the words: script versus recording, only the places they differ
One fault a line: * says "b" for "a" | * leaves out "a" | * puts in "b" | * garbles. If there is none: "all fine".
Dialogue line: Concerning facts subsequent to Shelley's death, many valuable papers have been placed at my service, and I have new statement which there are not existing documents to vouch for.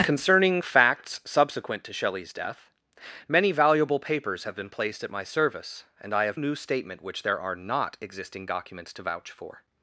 all fine